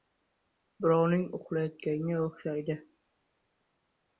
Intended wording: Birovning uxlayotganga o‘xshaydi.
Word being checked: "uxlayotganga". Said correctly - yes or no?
yes